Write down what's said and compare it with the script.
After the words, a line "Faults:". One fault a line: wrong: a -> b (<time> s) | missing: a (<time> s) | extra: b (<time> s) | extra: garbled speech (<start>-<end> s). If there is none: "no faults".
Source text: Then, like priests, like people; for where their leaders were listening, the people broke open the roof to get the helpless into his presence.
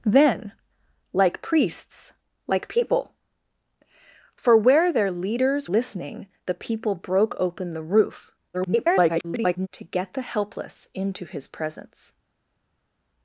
Then, like priests, like people; for where their leaders listening, the people broke open the roof [garbled] to get the helpless into his presence.
Faults:
missing: were (5.7 s)
extra: garbled speech (8.5-9.7 s)